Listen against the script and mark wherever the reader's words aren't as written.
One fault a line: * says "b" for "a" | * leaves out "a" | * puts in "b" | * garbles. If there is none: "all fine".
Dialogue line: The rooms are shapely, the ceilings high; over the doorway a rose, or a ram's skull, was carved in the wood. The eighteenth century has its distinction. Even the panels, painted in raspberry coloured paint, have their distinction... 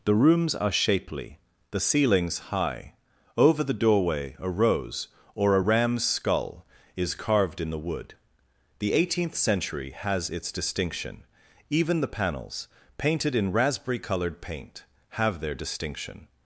* says "is" for "was"